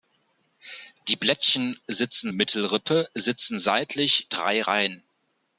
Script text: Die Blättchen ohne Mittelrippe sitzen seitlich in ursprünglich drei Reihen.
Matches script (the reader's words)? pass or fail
fail